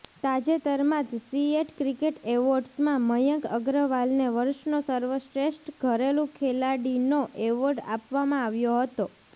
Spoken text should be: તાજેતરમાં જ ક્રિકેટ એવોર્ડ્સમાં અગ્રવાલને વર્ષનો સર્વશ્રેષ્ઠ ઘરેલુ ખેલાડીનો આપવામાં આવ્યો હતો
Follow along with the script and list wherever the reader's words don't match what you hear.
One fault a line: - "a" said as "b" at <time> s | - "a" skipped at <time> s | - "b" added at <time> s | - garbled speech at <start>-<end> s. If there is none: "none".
- "સીએટ" added at 1.2 s
- "મયંક" added at 3.1 s
- "એવોર્ડ" added at 7.5 s